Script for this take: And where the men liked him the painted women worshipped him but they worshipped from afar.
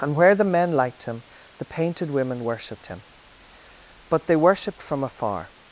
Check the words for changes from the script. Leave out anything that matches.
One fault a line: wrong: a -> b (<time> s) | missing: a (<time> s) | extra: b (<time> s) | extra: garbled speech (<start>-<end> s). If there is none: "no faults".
no faults